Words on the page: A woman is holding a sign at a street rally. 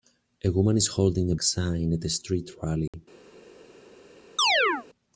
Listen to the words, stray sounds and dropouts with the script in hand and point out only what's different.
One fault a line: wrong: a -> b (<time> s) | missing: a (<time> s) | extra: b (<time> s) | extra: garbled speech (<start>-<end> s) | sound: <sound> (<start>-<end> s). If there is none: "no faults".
sound: dropout (2.9-2.9 s)
sound: chirp (4.4-4.9 s)